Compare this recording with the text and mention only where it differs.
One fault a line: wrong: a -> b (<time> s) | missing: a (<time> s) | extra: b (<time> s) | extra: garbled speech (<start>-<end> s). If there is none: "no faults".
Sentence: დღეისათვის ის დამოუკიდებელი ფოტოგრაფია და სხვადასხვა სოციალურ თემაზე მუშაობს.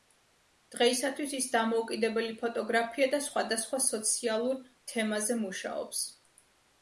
no faults